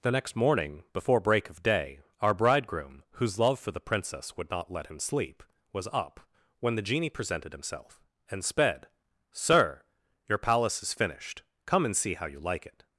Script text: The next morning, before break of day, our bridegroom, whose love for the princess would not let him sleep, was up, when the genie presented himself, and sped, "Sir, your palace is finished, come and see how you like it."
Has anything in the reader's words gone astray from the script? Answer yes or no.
no